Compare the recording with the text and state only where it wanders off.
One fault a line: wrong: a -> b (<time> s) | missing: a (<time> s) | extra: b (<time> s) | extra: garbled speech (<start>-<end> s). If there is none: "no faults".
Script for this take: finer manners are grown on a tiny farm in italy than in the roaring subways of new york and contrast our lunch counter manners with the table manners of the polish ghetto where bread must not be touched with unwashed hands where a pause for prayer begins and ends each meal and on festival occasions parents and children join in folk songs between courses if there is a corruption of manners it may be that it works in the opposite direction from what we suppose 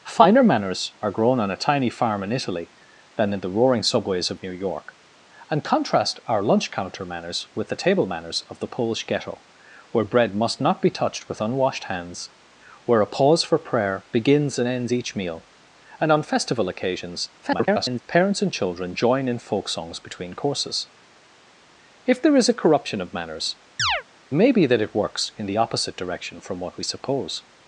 extra: garbled speech (17.4-18.0 s)
missing: it (23.6 s)